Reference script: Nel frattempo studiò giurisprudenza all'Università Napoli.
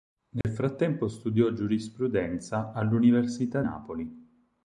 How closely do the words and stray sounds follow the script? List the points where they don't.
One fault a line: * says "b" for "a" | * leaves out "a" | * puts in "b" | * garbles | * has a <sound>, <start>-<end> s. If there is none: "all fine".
* has a dropout, 0.4-0.4 s